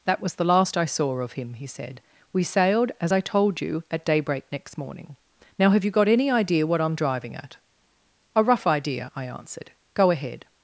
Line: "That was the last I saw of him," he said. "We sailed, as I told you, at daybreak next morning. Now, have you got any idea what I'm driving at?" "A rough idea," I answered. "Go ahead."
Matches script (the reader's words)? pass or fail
pass